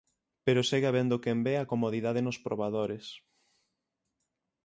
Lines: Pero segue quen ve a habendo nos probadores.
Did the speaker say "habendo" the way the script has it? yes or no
no